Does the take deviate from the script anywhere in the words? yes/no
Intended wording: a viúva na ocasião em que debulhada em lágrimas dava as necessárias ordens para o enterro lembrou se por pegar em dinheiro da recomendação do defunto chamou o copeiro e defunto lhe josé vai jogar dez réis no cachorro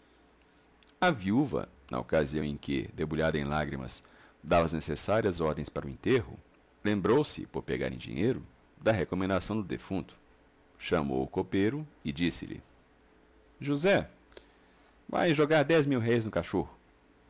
yes